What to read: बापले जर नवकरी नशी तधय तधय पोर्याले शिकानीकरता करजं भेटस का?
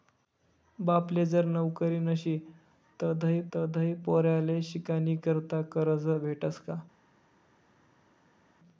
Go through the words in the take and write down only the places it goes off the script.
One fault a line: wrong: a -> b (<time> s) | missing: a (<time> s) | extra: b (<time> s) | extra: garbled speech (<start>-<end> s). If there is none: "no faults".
no faults